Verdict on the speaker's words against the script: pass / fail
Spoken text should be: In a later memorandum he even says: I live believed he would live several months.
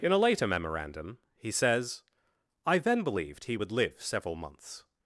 fail